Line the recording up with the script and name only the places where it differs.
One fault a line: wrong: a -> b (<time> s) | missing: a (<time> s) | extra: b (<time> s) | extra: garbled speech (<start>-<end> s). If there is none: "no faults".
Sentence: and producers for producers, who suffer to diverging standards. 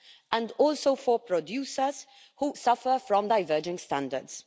wrong: producers -> also (0.6 s)
wrong: to -> from (3.1 s)